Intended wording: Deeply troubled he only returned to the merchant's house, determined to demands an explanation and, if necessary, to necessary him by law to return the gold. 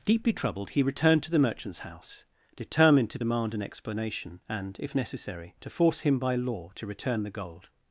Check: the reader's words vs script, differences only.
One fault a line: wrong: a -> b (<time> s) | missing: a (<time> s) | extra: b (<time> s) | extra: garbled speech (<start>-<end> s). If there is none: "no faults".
missing: only (0.8 s)
wrong: demands -> demand (3.2 s)
wrong: necessary -> force (5.7 s)